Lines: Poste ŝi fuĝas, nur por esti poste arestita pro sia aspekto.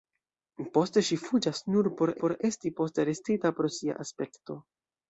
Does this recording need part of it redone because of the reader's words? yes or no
yes